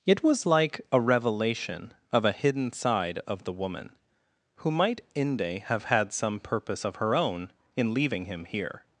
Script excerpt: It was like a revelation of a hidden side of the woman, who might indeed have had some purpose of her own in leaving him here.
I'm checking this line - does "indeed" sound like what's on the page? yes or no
no